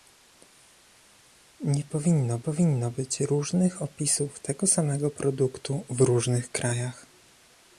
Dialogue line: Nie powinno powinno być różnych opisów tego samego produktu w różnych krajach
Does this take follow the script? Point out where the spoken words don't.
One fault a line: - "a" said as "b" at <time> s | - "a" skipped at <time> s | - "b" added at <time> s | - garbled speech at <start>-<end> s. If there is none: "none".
none